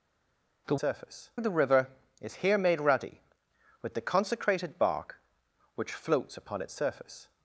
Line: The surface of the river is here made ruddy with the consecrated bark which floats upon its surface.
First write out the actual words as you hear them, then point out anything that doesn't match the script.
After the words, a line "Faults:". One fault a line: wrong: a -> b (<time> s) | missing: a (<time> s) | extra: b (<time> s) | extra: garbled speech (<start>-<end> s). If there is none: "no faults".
The surface of the river is here made ruddy with the consecrated bark which floats upon its surface.
Faults:
no faults